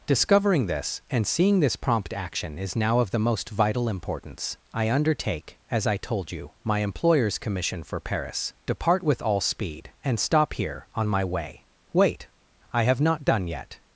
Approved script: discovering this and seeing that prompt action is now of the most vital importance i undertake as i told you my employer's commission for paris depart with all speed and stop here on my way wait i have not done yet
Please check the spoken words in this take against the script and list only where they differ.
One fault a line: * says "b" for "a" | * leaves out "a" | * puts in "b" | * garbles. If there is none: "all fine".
* says "this" for "that"